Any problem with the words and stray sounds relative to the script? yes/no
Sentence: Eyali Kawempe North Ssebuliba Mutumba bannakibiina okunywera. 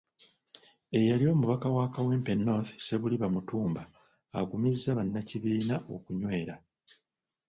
yes